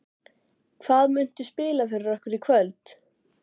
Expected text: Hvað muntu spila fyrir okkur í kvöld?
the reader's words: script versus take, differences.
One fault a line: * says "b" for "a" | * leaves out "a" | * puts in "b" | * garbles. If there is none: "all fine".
all fine